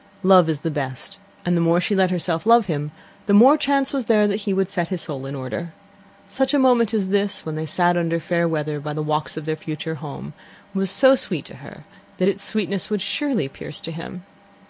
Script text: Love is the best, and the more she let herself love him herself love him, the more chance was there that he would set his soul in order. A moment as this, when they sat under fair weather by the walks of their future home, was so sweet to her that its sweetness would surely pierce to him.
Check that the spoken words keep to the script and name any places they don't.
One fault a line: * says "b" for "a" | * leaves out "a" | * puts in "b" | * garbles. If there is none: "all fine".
* leaves out "herself love him"
* puts in "Such"